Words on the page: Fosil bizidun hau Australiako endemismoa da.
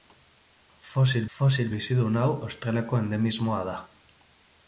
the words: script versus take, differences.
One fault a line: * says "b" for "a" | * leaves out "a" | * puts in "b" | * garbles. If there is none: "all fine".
* puts in "fosil"